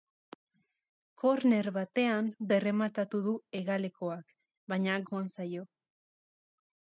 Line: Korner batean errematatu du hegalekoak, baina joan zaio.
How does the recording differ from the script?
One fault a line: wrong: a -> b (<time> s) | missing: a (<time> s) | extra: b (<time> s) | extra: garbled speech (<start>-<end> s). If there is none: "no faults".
no faults